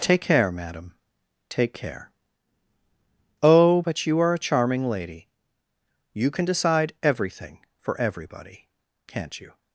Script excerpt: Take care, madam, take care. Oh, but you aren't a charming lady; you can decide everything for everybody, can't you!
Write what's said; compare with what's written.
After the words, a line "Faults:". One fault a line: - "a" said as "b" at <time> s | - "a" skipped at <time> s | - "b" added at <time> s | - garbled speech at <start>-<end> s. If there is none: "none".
Take care, madam, take care. Oh, but you are a charming lady; you can decide everything for everybody, can't you!
Faults:
- "aren't" said as "are" at 4.2 s